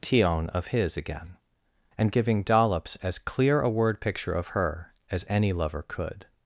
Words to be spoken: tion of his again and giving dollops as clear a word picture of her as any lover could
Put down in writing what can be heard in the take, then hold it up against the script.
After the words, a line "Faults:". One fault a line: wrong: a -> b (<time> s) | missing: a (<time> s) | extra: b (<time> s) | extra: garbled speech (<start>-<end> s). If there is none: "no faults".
tion of his again and giving dollops as clear a word picture of her as any lover could
Faults:
no faults